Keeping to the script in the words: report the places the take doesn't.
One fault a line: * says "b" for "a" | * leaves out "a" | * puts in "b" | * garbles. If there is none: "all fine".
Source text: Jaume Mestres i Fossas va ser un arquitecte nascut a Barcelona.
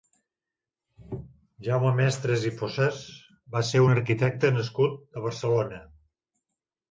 all fine